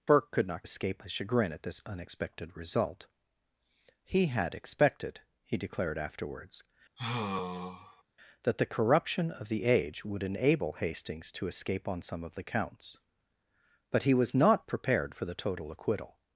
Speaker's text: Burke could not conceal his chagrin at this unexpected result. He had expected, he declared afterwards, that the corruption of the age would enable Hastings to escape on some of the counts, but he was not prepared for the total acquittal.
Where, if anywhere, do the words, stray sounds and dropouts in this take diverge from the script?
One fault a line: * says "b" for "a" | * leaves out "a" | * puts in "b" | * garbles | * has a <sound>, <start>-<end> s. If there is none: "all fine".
* says "escape" for "conceal"
* has a sigh, 7.0-8.0 s